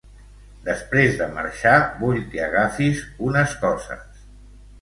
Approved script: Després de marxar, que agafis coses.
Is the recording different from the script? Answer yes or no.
yes